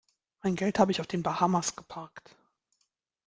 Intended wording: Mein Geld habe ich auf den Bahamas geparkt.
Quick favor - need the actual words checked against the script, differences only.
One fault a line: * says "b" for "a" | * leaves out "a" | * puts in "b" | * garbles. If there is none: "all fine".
all fine